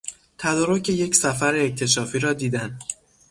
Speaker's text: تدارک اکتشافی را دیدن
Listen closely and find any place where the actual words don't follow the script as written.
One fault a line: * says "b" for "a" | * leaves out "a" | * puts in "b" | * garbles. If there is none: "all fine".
* puts in "یک سفر"